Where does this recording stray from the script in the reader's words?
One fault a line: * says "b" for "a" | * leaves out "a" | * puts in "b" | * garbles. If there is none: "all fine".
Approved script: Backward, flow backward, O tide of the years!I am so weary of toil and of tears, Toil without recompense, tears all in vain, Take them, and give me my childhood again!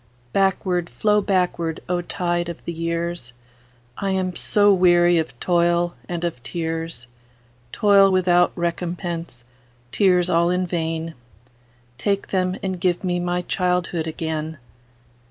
all fine